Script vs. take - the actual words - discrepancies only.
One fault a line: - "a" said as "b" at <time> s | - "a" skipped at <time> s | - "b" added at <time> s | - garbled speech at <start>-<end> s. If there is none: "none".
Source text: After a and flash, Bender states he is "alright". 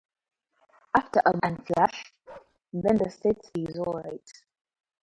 none